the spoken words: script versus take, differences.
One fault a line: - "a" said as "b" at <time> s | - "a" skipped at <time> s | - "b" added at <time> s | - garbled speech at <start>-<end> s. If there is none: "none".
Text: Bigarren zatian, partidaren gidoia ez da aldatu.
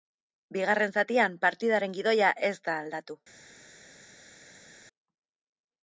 none